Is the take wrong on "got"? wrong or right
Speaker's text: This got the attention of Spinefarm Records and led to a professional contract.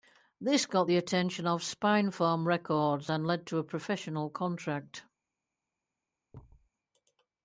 right